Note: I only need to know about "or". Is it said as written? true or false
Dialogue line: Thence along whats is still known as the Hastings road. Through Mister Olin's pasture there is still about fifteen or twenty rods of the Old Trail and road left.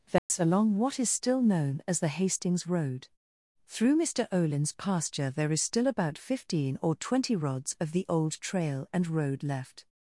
true